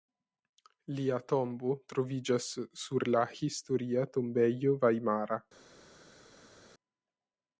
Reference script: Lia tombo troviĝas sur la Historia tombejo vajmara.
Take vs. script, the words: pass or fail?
pass